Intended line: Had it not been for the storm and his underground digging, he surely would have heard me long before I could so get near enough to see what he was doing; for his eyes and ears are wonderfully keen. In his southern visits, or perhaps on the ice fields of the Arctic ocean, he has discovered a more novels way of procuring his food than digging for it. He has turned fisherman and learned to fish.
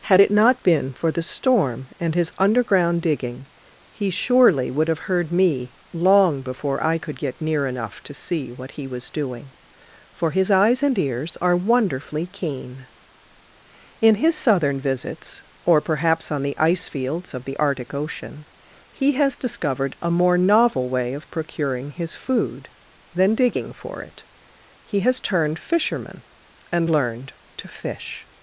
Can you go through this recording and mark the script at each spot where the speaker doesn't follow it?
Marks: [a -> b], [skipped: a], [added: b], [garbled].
Had it not been for the storm and his underground digging, he surely would have heard me long before I could [skipped: so] get near enough to see what he was doing; for his eyes and ears are wonderfully keen. In his southern visits, or perhaps on the ice fields of the Arctic ocean, he has discovered a more [novels -> novel] way of procuring his food than digging for it. He has turned fisherman and learned to fish.